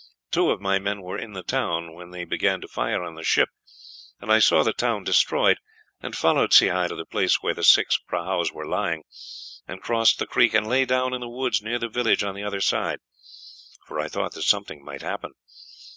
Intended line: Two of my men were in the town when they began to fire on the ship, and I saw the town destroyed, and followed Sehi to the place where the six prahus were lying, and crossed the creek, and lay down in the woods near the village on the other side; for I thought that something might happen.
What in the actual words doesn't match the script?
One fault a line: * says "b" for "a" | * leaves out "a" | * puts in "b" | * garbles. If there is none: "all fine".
all fine